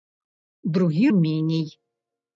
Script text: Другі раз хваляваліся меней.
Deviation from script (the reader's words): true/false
true